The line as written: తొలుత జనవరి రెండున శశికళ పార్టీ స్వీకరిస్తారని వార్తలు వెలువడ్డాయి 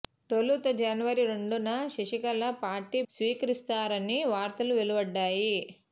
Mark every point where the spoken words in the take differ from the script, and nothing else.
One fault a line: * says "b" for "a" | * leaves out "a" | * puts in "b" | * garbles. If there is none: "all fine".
all fine